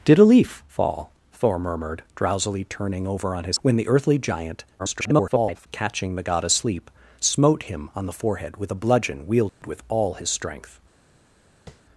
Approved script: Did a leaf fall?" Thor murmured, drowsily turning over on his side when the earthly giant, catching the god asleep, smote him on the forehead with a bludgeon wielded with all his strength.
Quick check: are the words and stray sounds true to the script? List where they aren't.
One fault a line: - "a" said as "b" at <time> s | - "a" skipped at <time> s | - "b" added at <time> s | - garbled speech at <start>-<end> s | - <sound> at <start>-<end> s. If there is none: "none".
- "side" skipped at 3.6 s
- garbled speech at 4.8-5.7 s
- dropout at 9.5-9.6 s
- tap at 11.7-11.8 s